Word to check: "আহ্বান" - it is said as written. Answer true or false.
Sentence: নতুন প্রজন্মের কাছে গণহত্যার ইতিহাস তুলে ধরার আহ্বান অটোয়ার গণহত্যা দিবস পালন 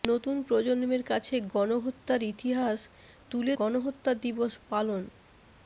false